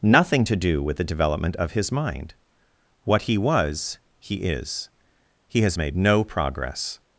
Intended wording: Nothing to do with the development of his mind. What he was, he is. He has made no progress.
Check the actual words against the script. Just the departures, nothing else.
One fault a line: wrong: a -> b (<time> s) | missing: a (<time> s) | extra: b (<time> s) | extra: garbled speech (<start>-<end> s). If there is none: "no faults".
no faults